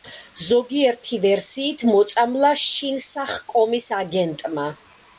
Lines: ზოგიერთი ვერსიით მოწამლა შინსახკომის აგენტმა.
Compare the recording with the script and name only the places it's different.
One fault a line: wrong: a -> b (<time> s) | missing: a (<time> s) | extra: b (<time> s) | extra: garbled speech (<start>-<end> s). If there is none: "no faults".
no faults